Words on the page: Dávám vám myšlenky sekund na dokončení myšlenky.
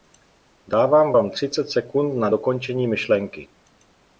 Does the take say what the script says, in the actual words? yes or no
no